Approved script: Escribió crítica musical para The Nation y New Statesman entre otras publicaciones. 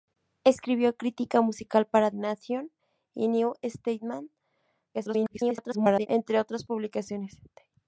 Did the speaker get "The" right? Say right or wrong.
wrong